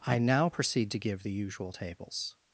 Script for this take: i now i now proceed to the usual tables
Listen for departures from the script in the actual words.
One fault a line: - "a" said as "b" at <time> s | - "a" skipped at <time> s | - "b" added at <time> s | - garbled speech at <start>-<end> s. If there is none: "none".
- "i now" skipped at 0.5 s
- "give" added at 1.0 s